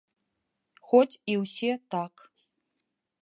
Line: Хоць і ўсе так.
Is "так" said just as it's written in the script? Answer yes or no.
yes